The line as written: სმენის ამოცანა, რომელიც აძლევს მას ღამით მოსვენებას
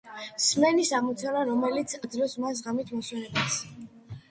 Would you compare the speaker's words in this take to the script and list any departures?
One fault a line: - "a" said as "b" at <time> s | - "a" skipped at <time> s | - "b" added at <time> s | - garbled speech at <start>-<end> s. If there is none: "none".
none